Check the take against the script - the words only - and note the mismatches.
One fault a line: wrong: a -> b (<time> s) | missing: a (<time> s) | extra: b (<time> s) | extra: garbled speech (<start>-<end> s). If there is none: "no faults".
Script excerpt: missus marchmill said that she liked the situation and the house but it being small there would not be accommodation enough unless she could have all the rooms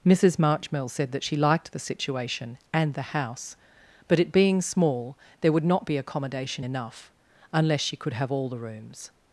no faults